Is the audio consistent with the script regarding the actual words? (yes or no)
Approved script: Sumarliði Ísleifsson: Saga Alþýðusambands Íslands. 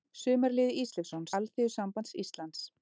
no